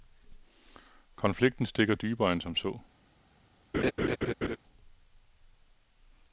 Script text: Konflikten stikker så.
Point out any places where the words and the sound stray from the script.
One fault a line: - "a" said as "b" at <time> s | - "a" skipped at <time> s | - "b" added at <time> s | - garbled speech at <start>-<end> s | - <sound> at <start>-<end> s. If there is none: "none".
- "dybere end som" added at 1.9 s
- laugh at 3.7-4.6 s